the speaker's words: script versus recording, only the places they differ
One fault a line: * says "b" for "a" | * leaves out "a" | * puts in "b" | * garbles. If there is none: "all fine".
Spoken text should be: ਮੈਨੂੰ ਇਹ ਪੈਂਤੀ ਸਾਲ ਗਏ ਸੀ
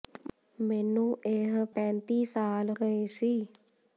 all fine